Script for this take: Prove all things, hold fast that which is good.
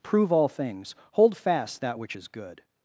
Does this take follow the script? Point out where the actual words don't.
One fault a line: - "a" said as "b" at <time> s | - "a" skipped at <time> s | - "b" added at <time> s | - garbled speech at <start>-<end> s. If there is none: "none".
none